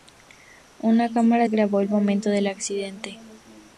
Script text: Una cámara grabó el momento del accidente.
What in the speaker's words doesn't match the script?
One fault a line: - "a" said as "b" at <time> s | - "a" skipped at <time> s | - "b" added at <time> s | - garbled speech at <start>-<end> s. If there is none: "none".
none